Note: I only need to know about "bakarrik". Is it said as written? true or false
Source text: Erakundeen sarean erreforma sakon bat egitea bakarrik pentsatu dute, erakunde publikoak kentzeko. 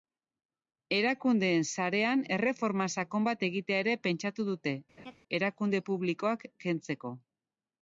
false